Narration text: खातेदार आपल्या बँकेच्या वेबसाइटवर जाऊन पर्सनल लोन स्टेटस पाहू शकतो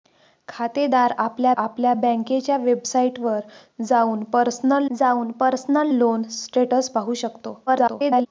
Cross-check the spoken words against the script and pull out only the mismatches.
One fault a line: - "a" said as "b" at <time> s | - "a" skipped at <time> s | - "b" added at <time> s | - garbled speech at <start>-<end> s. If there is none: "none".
- "आपल्या" added at 1.6 s
- "जाऊन पर्सनल" added at 4.9 s
- garbled speech at 7.7-8.3 s